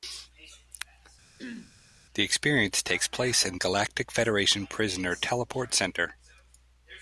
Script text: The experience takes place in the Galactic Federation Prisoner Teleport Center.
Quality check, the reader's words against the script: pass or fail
fail